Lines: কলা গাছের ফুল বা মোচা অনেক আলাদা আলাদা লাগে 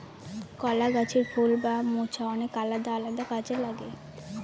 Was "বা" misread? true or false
false